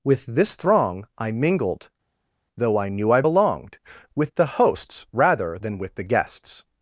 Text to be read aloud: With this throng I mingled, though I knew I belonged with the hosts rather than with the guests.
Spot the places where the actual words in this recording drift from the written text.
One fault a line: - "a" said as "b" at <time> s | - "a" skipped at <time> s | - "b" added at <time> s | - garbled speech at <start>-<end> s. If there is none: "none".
none